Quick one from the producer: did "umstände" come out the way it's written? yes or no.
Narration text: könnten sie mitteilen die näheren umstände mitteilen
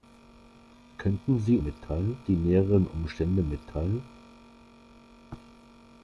yes